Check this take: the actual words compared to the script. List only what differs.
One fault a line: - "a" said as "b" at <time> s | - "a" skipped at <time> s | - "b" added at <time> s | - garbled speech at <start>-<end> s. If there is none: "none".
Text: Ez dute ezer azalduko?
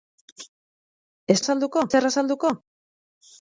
- "dute" said as "azalduko" at 1.4 s